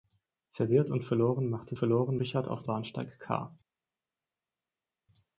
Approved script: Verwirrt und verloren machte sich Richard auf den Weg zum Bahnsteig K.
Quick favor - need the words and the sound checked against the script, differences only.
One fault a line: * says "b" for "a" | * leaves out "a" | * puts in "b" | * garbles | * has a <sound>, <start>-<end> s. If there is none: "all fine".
* says "verloren" for "sich"
* leaves out "den Weg zum"